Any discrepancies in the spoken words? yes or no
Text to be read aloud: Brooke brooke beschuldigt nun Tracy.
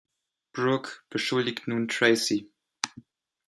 yes